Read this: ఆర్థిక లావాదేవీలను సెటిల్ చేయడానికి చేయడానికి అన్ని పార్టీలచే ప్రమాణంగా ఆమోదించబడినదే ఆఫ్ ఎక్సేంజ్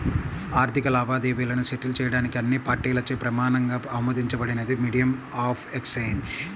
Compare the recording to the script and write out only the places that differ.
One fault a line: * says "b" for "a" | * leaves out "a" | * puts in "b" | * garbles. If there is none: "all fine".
* leaves out "చేయడానికి"
* puts in "మీడియం"